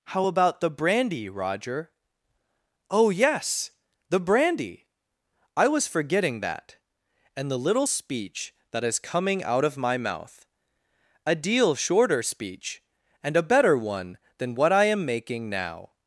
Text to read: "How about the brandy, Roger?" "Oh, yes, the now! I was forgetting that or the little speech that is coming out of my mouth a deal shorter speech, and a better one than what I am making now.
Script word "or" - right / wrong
wrong